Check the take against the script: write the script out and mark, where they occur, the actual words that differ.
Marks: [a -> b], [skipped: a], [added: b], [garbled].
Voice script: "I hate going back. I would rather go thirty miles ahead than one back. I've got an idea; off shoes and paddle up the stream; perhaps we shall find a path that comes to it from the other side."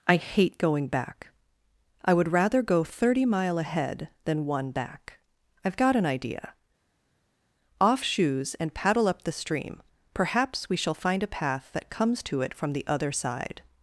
"I hate going back. I would rather go thirty [miles -> mile] ahead than one back. I've got an idea; off shoes and paddle up the stream; perhaps we shall find a path that comes to it from the other side."